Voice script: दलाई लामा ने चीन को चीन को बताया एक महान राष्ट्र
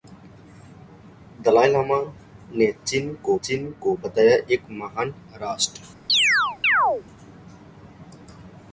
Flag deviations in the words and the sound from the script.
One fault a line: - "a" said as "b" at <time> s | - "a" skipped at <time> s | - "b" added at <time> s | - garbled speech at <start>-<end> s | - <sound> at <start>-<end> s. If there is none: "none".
- chirp at 6.1-7.0 s